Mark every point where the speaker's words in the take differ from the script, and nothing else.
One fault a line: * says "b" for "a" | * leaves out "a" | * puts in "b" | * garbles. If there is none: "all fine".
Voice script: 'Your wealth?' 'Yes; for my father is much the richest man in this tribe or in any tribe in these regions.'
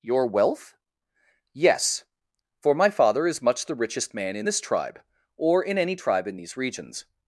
all fine